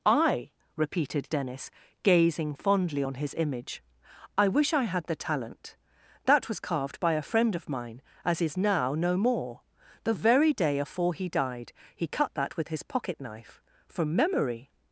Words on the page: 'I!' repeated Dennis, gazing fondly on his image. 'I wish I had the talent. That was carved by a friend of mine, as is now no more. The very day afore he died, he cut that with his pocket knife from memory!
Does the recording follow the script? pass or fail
pass